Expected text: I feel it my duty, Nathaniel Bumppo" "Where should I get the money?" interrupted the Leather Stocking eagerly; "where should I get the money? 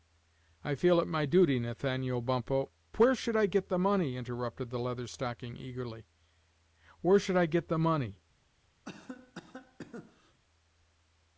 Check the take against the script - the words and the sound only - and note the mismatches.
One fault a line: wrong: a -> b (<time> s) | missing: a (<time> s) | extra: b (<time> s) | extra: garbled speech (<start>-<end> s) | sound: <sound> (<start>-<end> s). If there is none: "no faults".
sound: cough (8.8-10.4 s)